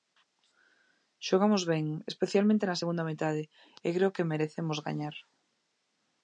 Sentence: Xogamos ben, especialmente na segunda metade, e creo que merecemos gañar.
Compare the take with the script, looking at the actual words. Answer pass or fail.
pass